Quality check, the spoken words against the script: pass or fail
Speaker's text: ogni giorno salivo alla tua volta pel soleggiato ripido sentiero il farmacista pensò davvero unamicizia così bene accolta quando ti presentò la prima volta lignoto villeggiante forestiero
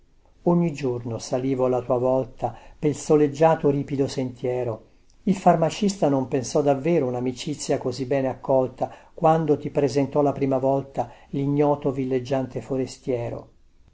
fail